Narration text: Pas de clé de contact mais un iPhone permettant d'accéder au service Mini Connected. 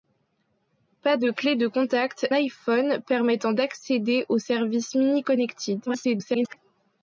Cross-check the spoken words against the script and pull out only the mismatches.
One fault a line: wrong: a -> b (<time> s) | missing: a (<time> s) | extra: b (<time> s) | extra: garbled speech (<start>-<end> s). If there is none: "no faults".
missing: mais un (2.3 s)
extra: garbled speech (5.9-6.6 s)